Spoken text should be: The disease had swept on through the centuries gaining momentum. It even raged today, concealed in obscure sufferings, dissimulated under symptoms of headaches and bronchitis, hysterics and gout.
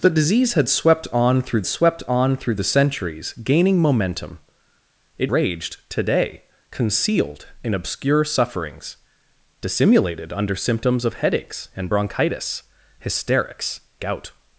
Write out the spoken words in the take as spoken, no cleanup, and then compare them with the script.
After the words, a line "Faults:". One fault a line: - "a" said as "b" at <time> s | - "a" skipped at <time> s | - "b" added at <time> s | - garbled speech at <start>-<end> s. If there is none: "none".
The disease had swept on through swept on through the centuries gaining momentum. It raged today, concealed in obscure sufferings, dissimulated under symptoms of headaches and bronchitis, hysterics gout.
Faults:
- "swept on through" added at 1.6 s
- "even" skipped at 5.3 s
- "and" skipped at 13.8 s